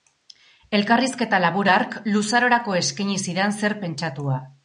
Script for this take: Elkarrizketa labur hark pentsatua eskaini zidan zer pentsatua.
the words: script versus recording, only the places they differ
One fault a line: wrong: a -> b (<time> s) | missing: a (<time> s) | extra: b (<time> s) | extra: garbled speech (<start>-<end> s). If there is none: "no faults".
wrong: pentsatua -> luzarorako (2.1 s)